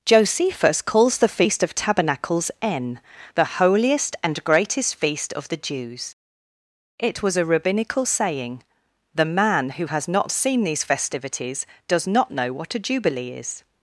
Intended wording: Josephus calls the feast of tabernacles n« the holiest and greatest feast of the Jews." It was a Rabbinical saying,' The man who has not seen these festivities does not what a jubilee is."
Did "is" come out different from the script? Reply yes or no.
no